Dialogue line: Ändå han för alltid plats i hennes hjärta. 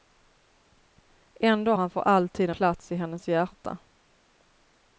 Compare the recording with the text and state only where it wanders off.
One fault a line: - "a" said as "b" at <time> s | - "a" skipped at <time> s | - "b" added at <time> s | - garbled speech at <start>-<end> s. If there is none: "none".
none